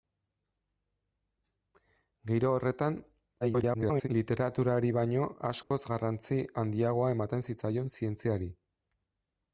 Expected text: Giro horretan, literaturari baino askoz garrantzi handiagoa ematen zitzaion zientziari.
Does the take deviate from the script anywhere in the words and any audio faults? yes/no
yes